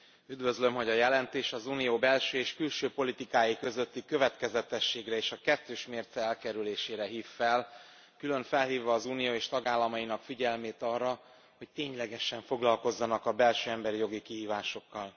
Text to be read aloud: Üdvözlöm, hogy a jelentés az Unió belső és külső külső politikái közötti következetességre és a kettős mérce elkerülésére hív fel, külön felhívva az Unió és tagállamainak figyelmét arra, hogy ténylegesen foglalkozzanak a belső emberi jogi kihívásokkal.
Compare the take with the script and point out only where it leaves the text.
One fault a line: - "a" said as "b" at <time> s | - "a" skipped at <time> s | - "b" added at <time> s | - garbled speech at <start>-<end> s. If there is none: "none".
- "külső" skipped at 2.9 s